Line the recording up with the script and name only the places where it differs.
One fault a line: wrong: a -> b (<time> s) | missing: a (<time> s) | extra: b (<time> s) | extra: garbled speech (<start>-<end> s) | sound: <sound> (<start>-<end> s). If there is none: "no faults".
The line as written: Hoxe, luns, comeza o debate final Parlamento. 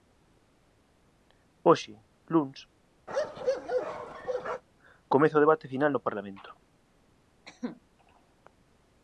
sound: bark (3.1-4.6 s)
extra: no (5.9 s)
sound: cough (7.5-7.8 s)